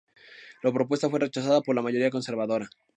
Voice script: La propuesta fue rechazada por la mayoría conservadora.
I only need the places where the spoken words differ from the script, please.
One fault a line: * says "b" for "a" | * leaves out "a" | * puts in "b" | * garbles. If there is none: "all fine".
all fine